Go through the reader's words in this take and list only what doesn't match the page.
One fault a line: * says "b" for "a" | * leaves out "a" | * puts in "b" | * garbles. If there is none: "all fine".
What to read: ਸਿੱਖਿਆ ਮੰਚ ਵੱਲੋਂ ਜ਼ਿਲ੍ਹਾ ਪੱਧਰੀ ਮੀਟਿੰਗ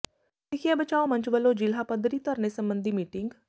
* puts in "ਬਚਾਓ"
* puts in "ਧਰਨੇ ਸਬੰਧੀ"